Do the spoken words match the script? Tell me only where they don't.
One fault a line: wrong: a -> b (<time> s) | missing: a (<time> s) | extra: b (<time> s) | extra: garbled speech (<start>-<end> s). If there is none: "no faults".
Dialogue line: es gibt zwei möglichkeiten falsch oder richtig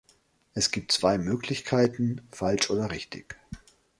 no faults